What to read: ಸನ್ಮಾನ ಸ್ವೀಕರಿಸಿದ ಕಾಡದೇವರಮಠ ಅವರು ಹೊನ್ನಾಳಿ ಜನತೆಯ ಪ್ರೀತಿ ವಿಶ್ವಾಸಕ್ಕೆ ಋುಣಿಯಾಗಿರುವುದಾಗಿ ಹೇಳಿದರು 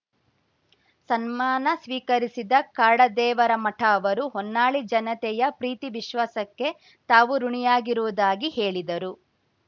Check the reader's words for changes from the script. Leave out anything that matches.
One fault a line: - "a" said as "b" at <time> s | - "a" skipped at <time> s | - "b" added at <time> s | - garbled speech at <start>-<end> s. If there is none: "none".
- "ತಾವು" added at 7.1 s